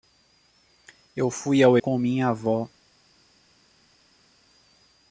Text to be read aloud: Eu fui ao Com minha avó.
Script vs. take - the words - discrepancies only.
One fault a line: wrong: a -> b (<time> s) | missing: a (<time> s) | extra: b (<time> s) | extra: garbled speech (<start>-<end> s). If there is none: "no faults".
no faults